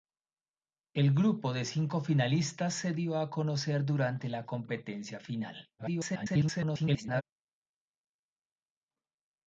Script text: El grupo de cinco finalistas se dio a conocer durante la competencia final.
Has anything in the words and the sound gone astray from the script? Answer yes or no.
yes